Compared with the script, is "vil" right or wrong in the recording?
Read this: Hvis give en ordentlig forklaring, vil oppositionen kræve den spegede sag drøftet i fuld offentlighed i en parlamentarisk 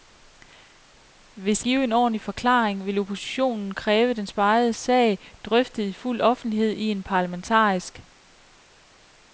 right